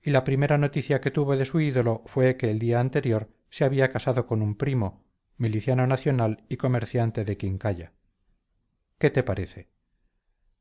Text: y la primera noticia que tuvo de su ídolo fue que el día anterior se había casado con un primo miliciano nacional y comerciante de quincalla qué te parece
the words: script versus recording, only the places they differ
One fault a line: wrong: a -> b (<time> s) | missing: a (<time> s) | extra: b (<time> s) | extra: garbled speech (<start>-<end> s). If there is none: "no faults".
no faults